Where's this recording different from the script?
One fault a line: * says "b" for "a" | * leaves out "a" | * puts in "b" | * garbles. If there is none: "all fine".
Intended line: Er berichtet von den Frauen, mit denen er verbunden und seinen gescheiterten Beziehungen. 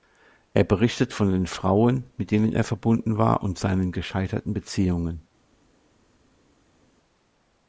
* puts in "war"